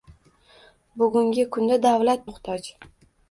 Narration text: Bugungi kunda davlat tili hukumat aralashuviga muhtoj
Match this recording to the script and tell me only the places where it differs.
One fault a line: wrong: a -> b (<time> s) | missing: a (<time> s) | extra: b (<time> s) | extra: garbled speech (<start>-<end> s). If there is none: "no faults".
missing: tili hukumat aralashuviga (2.2 s)